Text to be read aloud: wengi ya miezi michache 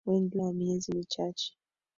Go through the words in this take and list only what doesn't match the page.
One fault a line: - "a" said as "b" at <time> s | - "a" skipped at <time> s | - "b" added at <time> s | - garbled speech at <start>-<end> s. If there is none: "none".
none